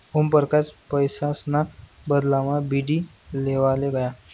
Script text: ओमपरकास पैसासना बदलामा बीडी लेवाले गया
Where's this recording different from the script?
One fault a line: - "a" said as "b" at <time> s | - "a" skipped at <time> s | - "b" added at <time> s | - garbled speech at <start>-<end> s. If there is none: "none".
none